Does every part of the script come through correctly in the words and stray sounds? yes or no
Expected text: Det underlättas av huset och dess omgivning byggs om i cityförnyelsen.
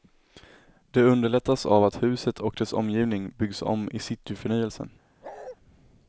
no